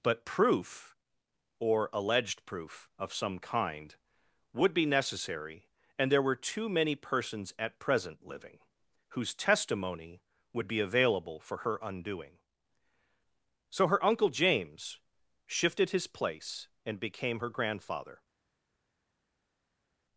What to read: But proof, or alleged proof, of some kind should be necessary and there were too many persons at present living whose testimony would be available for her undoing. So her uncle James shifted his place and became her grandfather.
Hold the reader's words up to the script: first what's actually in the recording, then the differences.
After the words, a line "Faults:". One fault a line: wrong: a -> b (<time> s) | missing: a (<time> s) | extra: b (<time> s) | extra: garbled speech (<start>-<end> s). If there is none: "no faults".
But proof, or alleged proof, of some kind would be necessary and there were too many persons at present living whose testimony would be available for her undoing. So her uncle James shifted his place and became her grandfather.
Faults:
wrong: should -> would (4.5 s)